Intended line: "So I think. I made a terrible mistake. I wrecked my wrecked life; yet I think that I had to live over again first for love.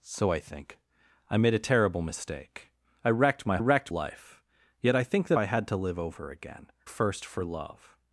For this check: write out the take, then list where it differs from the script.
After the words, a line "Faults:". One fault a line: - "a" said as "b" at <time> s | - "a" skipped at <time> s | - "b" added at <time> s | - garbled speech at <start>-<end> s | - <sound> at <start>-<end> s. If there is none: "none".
"So I think. I made a terrible mistake. I wrecked my wrecked life; yet I think that I had to live over again first for love.
Faults:
none